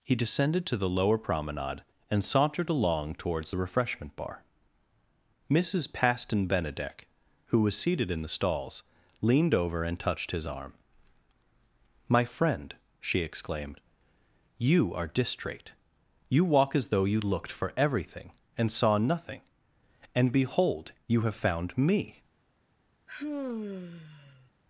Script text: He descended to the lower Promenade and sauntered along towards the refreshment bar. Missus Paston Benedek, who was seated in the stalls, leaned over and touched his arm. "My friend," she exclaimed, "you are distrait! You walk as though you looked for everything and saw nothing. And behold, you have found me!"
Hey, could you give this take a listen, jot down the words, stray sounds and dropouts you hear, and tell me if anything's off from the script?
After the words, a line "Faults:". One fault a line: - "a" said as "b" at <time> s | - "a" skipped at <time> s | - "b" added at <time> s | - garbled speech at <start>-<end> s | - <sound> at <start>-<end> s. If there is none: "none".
He descended to the lower Promenade and sauntered along towards the refreshment bar. Missus Paston Benedek, who was seated in the stalls, leaned over and touched his arm. "My friend," she exclaimed, "you are distrait! You walk as though you looked for everything and saw nothing. And behold, you have found me!"
Faults:
- sigh at 23.1-24.5 s